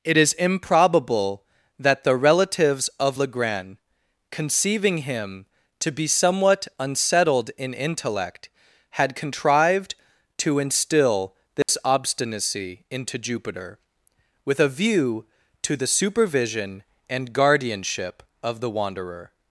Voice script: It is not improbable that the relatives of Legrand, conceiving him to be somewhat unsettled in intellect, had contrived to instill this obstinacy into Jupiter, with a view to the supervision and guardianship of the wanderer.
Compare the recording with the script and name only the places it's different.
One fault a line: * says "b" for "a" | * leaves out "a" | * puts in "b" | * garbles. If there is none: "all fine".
* leaves out "not"